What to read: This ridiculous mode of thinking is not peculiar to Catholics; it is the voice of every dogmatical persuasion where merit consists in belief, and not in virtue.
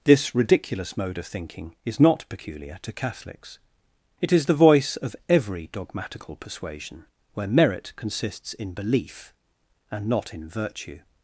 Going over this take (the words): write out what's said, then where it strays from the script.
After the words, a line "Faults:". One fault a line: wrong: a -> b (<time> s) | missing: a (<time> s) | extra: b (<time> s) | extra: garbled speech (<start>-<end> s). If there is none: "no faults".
This ridiculous mode of thinking is not peculiar to Catholics; it is the voice of every dogmatical persuasion where merit consists in belief, and not in virtue.
Faults:
no faults